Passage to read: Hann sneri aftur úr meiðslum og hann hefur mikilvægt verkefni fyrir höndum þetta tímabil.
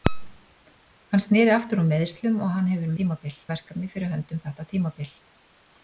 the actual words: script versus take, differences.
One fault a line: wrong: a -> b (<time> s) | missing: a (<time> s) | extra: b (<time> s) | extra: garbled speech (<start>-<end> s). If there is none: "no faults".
wrong: mikilvægt -> tímabil (3.0 s)